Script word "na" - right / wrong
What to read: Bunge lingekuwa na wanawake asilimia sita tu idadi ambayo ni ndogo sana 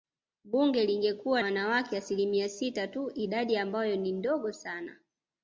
wrong